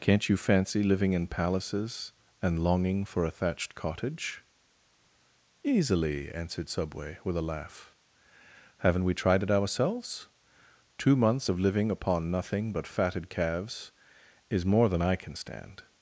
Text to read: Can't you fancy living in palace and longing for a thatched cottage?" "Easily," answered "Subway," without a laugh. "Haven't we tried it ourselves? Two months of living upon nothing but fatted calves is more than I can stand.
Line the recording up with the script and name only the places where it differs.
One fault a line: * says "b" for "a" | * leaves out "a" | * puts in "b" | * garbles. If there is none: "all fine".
* says "palaces" for "palace"
* says "with" for "without"